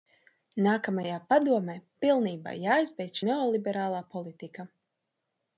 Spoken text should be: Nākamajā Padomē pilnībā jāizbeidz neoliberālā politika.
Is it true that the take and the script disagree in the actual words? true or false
false